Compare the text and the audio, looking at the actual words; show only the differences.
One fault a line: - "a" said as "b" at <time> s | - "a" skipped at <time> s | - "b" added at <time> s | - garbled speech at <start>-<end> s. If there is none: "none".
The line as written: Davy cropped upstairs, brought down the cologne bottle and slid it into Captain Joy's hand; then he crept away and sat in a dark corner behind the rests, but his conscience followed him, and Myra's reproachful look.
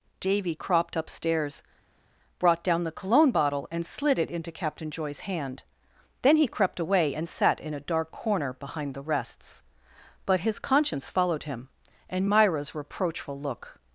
none